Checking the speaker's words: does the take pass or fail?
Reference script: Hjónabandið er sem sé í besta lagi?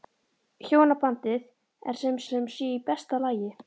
fail